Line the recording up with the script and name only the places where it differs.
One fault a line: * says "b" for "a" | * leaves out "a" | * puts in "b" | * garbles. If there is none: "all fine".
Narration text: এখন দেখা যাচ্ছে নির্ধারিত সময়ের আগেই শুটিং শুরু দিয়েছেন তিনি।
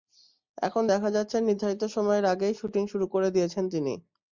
* puts in "করে"